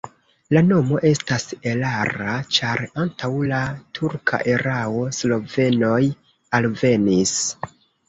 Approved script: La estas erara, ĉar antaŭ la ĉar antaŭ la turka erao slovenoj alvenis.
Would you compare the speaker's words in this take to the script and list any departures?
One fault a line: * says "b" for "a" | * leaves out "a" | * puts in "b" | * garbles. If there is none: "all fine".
* puts in "nomo"
* leaves out "ĉar antaŭ la"